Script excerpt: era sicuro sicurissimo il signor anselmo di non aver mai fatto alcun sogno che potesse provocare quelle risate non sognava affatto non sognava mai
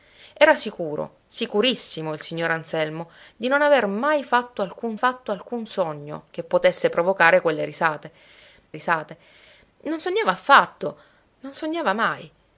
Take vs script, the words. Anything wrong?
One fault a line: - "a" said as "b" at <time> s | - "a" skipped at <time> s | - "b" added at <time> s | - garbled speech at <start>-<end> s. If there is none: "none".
- "fatto alcun" added at 4.9 s
- "risate" added at 8.7 s